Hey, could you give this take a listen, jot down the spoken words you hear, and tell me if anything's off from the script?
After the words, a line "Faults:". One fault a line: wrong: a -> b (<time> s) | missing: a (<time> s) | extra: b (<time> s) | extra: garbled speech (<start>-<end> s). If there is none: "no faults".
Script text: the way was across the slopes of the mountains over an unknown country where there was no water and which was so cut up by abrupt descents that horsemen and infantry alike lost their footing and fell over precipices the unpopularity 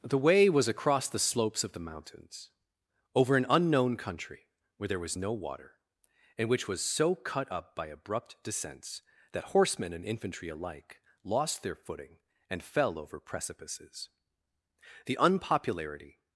the way was across the slopes of the mountains over an unknown country where there was no water and which was so cut up by abrupt descents that horsemen and infantry alike lost their footing and fell over precipices the unpopularity
Faults:
no faults